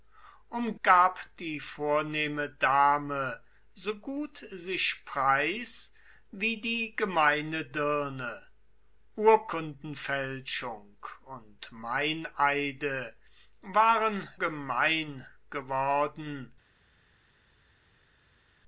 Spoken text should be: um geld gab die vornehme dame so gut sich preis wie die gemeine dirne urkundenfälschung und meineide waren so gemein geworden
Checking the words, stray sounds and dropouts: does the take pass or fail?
fail